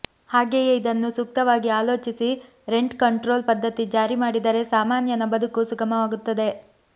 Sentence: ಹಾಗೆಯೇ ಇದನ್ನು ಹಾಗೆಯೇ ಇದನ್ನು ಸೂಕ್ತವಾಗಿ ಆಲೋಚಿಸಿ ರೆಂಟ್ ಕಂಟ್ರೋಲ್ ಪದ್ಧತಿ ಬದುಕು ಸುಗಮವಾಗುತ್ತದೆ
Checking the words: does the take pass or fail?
fail